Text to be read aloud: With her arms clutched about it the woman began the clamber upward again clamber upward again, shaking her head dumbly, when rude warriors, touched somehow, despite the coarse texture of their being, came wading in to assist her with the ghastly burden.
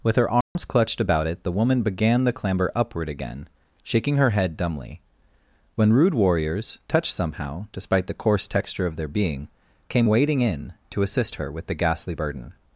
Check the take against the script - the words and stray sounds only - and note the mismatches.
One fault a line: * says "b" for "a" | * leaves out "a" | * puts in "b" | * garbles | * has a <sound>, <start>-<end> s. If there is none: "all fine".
* has a dropout, 0.4-0.6 s
* leaves out "clamber upward again"